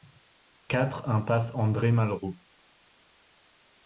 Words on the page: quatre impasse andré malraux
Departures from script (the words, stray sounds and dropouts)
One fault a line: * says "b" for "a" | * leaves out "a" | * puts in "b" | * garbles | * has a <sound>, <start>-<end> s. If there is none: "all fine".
all fine